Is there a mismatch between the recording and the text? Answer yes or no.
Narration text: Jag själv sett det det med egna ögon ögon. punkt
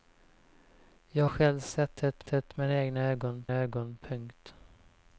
no